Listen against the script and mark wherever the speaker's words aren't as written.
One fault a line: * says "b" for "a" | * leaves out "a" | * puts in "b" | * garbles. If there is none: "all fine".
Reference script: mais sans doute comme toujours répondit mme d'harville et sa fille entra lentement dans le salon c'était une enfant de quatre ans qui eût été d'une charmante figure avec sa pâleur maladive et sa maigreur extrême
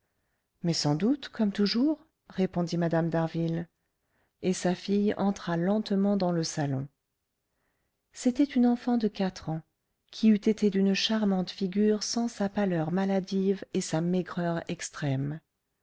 * says "sans" for "avec"